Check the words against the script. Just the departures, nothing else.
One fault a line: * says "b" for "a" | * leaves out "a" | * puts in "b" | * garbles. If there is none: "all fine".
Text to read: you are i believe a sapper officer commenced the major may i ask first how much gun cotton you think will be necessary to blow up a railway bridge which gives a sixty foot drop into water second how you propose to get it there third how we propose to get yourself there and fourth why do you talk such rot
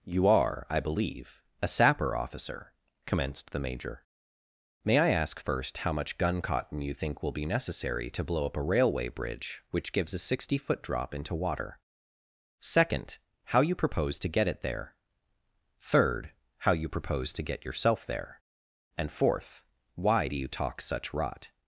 * says "you" for "we"